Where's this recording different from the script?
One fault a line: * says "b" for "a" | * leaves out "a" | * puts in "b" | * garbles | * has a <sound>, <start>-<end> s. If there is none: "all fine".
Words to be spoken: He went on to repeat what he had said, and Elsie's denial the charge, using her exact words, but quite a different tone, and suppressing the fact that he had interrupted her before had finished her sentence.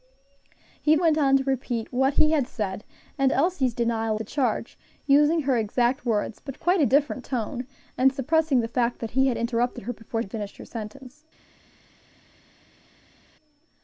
all fine